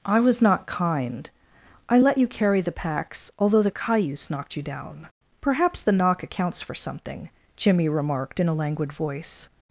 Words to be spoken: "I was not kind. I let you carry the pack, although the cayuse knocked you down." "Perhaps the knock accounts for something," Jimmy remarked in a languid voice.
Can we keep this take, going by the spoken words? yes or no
no